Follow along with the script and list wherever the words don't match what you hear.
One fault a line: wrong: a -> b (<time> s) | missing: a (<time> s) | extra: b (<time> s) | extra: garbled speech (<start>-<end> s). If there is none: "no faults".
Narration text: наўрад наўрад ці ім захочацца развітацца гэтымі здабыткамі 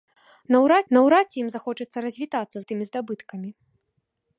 no faults